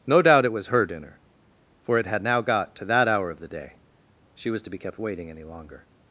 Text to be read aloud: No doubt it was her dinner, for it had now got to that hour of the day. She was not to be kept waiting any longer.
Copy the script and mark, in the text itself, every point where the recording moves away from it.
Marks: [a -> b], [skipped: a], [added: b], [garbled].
No doubt it was her dinner, for it had now got to that hour of the day. She was [skipped: not] to be kept waiting any longer.